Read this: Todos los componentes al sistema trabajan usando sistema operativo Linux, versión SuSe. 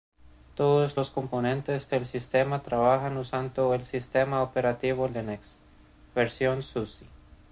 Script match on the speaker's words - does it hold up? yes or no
no